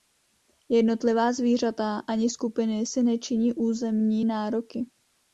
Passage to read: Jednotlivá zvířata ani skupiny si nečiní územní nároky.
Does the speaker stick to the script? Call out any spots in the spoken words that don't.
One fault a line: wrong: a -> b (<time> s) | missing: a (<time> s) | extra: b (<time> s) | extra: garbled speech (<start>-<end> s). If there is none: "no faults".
no faults